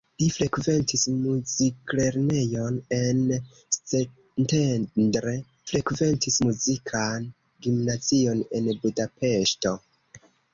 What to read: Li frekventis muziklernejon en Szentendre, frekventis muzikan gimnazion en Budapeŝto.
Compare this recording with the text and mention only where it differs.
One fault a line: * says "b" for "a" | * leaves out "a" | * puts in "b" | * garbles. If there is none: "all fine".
all fine